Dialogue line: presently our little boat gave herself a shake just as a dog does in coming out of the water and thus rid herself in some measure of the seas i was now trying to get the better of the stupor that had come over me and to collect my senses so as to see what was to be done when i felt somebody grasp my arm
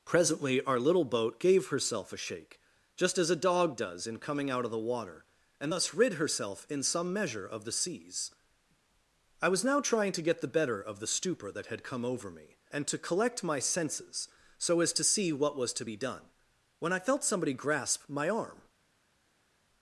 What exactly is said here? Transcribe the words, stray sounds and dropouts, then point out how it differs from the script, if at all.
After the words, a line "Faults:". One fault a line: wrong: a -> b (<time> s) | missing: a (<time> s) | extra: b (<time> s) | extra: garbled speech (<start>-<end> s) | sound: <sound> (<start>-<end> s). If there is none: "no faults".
presently our little boat gave herself a shake just as a dog does in coming out of the water and thus rid herself in some measure of the seas i was now trying to get the better of the stupor that had come over me and to collect my senses so as to see what was to be done when i felt somebody grasp my arm
Faults:
no faults